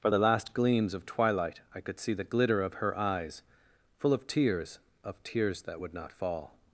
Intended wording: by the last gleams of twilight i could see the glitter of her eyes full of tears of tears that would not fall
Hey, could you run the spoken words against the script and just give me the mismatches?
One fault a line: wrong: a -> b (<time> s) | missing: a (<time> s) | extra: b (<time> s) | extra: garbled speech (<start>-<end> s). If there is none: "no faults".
wrong: by -> for (0.0 s)